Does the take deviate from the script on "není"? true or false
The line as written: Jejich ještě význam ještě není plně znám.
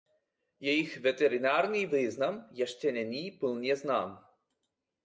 false